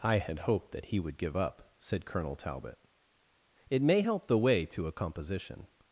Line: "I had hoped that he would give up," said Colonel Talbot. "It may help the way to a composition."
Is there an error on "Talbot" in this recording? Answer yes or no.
no